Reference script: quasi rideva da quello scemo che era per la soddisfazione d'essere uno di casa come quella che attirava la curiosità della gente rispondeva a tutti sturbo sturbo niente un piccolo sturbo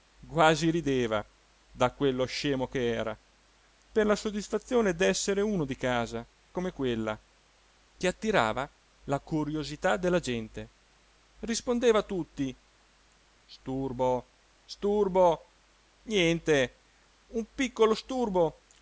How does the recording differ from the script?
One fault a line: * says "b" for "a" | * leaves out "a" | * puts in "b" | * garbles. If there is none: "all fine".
all fine